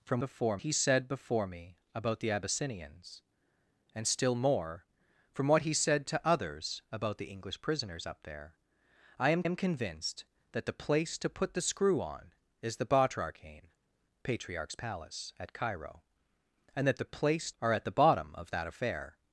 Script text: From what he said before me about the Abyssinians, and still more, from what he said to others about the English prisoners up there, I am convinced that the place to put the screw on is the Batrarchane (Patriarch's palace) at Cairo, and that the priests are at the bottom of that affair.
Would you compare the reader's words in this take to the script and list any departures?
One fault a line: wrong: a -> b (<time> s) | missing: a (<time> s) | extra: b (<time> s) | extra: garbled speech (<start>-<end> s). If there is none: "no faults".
wrong: what -> before (0.2 s)
extra: am (9.4 s)
wrong: priests -> place (17.1 s)